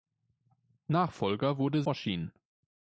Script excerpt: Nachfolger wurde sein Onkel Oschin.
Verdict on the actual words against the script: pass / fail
fail